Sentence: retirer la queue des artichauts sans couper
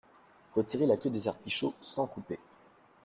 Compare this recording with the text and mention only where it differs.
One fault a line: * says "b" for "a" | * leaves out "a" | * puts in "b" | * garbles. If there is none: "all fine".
all fine